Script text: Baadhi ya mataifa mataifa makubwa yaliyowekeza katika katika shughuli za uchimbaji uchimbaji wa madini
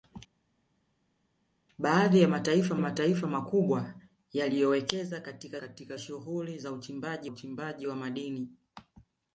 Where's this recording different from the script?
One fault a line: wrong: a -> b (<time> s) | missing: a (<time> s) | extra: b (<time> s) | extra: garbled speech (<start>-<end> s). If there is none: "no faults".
no faults